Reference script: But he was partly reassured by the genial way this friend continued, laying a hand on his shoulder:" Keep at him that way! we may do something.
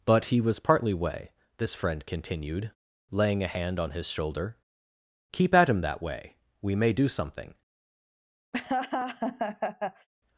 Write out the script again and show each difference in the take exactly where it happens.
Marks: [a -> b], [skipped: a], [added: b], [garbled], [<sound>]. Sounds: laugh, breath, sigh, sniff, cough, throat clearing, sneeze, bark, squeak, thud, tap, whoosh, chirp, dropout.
But he was partly [skipped: reassured by the genial] way this friend continued, laying a hand on his shoulder:" Keep at him that way! we may do something. [laugh]